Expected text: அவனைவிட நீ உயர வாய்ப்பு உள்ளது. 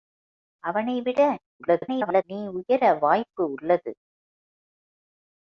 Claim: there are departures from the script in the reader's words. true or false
true